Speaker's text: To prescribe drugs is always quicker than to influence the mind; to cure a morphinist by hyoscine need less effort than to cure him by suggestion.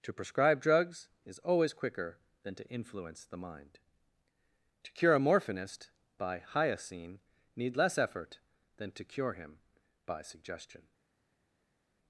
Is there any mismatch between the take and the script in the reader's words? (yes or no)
no